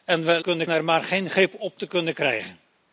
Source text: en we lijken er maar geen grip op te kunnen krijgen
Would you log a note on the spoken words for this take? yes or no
yes